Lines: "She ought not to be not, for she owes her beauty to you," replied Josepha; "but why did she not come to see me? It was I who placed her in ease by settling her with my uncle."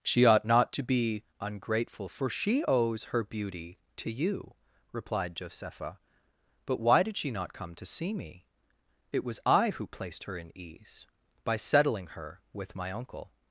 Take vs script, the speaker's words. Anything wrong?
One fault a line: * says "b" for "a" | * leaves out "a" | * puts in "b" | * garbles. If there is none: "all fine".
* says "ungrateful" for "not"